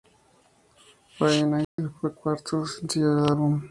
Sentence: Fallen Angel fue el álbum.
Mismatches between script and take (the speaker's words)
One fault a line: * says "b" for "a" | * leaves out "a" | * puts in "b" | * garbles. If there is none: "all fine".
* puts in "cuarto sencillo del"